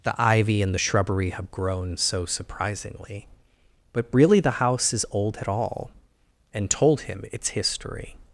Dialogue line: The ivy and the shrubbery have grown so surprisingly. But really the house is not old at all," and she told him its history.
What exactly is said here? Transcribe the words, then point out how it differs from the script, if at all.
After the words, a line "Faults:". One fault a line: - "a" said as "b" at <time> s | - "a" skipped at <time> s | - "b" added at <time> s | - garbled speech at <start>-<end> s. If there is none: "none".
The ivy and the shrubbery have grown so surprisingly. But really the house is old at all," and told him its history.
Faults:
- "not" skipped at 5.0 s
- "she" skipped at 6.7 s